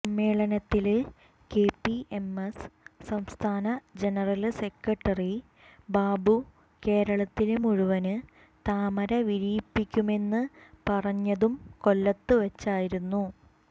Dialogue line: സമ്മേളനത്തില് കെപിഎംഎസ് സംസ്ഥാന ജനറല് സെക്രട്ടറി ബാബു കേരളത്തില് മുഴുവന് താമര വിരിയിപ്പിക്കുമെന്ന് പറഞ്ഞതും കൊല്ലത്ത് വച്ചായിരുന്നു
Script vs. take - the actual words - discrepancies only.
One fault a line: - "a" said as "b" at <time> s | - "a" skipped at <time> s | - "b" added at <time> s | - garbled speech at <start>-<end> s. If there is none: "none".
none